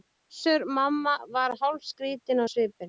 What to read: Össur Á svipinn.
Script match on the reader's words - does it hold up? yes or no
no